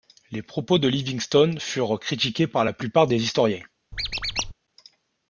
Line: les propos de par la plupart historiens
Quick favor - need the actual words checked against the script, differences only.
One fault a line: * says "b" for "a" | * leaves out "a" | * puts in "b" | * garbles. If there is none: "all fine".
* puts in "livingstone furent critiqués"
* puts in "des"